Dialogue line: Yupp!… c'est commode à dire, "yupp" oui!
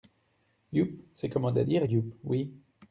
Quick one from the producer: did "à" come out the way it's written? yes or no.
yes